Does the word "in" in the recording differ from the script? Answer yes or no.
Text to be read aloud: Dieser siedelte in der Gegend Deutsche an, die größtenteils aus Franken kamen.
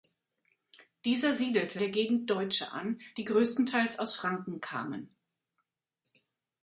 yes